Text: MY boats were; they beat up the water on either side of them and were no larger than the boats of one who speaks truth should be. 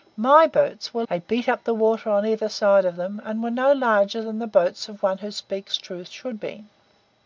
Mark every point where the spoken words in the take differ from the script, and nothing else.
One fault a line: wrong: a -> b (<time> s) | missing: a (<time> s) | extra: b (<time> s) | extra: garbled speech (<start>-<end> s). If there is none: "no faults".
no faults